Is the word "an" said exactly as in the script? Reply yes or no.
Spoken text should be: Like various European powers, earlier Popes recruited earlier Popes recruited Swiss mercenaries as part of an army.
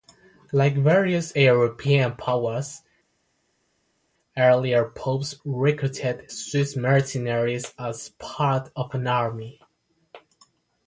yes